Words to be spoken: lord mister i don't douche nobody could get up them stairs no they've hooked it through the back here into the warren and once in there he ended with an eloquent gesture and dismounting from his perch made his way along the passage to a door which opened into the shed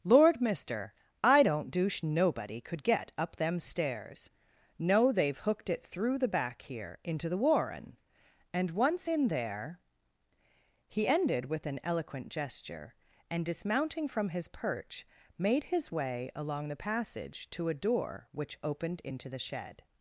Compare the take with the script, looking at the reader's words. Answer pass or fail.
pass